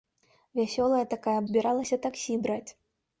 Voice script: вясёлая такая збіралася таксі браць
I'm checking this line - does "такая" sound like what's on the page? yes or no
yes